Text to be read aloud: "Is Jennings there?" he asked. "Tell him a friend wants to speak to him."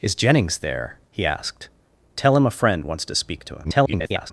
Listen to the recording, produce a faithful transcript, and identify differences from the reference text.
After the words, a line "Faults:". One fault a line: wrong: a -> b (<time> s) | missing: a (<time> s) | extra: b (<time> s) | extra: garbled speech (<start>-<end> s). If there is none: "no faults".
"Is Jennings there?" he asked. "Tell him a friend wants to speak to him." [garbled]
Faults:
extra: garbled speech (3.6-4.3 s)